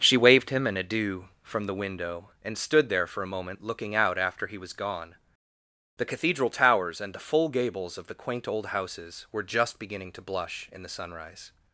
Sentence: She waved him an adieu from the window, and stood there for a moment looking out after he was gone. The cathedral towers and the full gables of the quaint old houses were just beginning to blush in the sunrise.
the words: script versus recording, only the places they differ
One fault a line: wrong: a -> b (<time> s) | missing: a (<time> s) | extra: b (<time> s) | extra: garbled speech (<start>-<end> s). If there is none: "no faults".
no faults